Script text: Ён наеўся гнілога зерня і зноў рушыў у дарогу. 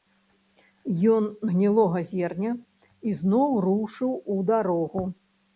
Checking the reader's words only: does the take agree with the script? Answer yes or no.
no